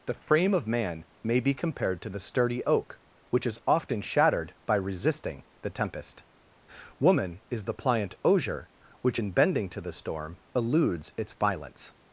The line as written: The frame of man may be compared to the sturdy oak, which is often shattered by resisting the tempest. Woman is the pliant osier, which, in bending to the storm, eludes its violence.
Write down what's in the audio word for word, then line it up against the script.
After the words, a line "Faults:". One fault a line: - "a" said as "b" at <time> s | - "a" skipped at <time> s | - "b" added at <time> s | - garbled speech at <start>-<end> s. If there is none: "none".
The frame of man may be compared to the sturdy oak, which is often shattered by resisting the tempest. Woman is the pliant osier, which, in bending to the storm, eludes its violence.
Faults:
none